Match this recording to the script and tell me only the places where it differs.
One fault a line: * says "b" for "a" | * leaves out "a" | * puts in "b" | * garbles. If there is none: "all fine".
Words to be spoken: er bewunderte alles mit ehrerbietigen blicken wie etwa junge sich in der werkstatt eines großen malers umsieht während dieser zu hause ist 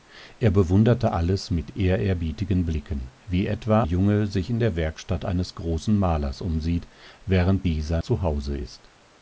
all fine